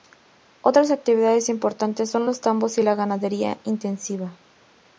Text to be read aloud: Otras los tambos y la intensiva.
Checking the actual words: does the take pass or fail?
fail